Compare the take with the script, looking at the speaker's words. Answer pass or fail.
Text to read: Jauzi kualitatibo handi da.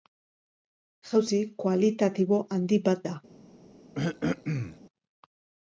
fail